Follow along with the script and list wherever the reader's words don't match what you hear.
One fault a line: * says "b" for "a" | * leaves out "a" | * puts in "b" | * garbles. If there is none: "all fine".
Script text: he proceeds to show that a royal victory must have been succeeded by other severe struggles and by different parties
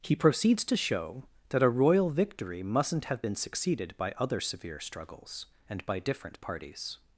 * says "mustn't" for "must"